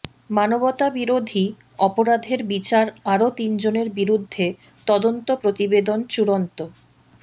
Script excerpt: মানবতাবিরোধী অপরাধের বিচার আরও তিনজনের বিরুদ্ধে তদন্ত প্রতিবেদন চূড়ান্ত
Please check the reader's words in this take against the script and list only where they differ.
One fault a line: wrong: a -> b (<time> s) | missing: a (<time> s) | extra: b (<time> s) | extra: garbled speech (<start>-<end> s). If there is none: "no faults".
no faults